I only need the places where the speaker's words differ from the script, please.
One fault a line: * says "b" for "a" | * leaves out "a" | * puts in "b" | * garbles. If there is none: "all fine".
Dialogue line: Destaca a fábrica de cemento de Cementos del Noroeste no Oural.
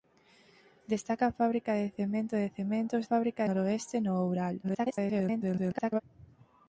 * says "fábrica" for "del"
* garbles